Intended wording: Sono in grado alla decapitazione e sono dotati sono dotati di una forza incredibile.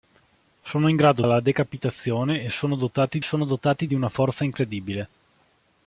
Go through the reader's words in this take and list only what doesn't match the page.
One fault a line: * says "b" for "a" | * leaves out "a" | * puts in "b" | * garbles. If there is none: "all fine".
all fine